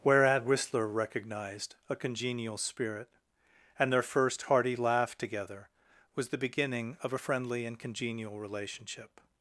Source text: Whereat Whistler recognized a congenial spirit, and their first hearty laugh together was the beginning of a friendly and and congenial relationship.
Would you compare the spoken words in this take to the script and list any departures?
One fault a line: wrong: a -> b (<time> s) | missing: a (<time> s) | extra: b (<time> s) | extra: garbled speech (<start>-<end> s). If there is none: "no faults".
missing: and (7.8 s)